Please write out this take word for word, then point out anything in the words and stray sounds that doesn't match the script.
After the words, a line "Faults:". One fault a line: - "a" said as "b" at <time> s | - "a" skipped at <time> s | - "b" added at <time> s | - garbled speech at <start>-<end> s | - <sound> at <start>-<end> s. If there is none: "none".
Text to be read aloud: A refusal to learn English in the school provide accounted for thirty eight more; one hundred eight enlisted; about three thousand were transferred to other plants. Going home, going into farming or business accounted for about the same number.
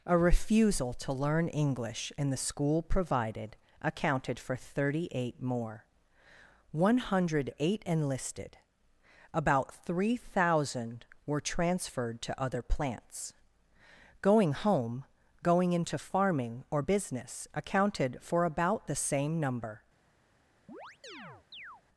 A refusal to learn English in the school provided accounted for thirty eight more; one hundred eight enlisted; about three thousand were transferred to other plants. Going home, going into farming or business accounted for about the same number.
Faults:
- "provide" said as "provided" at 2.8 s
- chirp at 20.7-21.8 s